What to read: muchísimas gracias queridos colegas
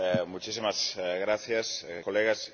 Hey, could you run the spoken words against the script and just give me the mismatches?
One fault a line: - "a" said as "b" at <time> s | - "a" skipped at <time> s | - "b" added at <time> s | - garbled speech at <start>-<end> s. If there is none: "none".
- "queridos" skipped at 1.9 s